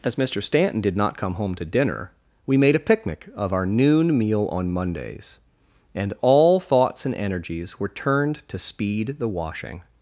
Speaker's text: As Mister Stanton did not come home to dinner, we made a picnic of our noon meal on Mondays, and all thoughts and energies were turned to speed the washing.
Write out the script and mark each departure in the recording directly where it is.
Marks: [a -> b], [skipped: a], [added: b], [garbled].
As Mister Stanton did not come home to dinner, we made a picnic of our noon meal on Mondays, and all thoughts and energies were turned to speed the washing.